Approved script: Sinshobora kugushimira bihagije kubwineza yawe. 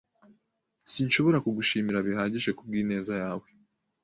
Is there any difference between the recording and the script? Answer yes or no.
no